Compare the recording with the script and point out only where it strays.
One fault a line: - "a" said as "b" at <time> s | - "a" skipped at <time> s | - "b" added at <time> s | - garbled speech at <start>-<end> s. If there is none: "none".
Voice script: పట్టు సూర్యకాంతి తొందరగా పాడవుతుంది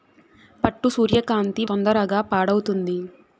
none